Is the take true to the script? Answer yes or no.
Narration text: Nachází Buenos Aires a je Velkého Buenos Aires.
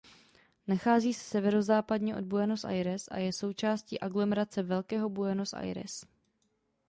no